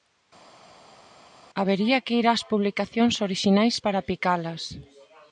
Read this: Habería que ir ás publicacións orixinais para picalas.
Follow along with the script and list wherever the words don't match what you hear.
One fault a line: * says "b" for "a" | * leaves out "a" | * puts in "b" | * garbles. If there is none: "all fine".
all fine